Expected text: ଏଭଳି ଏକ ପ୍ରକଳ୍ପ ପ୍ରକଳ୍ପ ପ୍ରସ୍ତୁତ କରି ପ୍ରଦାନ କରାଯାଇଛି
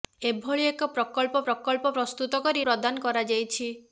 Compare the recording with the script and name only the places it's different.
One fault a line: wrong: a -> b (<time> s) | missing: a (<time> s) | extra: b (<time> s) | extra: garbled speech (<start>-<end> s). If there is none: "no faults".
no faults